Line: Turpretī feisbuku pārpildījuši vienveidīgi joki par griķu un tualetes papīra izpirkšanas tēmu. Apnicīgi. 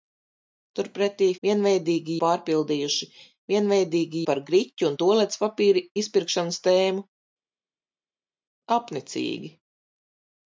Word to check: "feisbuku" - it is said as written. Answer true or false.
false